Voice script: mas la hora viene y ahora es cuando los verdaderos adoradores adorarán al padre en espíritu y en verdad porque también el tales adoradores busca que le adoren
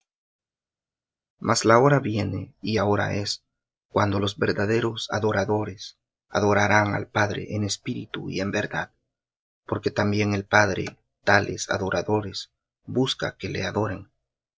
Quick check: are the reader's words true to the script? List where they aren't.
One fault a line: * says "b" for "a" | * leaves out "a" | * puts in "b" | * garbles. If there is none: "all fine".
* puts in "padre"